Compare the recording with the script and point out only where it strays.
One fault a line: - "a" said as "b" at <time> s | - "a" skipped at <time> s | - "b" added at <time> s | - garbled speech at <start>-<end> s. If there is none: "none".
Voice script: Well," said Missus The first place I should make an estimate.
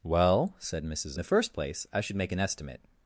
none